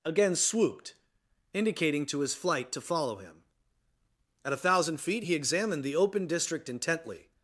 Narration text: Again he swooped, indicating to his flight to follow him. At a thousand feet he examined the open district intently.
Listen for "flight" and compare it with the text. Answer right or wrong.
right